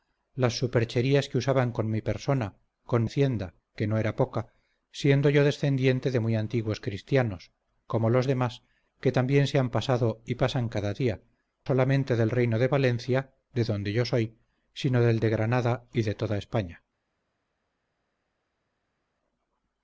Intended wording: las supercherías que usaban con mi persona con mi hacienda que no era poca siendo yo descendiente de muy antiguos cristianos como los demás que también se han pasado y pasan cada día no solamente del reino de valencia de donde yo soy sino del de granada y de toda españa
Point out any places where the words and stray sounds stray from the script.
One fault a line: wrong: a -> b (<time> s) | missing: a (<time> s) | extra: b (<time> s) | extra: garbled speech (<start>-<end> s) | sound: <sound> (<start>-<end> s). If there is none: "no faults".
missing: mi (3.0 s)
missing: no (11.2 s)